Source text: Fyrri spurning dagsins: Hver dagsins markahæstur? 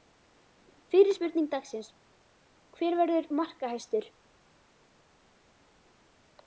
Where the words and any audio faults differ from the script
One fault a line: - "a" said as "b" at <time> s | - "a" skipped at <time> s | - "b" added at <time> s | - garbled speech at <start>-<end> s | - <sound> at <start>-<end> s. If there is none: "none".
- "dagsins" said as "verður" at 3.0 s